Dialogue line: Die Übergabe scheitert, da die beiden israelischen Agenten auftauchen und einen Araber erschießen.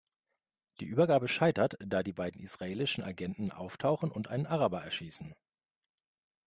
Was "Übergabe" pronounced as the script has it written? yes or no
yes